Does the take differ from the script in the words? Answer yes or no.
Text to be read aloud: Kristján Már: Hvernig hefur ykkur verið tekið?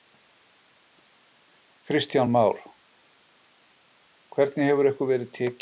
no